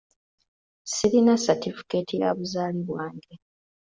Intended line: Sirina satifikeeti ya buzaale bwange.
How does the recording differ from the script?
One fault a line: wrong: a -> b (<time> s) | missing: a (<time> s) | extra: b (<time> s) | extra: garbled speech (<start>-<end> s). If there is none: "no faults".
no faults